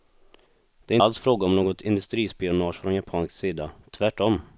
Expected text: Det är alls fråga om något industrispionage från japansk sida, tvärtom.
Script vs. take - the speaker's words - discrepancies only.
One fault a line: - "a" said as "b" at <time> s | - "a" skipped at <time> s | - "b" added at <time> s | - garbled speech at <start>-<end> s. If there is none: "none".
none